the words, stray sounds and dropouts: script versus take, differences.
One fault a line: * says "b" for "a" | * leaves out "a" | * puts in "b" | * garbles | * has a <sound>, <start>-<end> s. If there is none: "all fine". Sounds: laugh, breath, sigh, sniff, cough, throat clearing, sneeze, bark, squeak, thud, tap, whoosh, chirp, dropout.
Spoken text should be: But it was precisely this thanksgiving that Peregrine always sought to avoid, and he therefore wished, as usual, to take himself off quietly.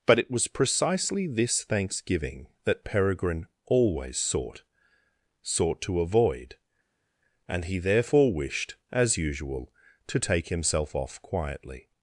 * puts in "sought"